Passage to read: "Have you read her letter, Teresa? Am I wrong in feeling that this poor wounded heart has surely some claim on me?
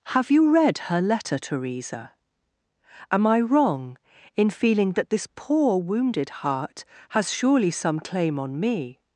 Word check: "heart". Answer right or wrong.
right